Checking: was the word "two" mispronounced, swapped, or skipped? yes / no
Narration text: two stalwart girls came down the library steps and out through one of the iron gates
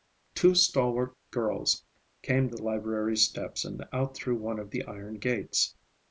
no